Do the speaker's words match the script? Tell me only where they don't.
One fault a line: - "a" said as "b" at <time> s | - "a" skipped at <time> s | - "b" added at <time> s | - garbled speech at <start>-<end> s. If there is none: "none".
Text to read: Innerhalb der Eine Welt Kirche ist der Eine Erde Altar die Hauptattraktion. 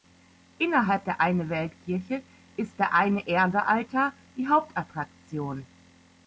none